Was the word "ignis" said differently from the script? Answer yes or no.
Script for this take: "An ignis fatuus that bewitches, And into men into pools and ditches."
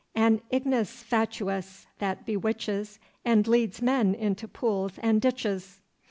no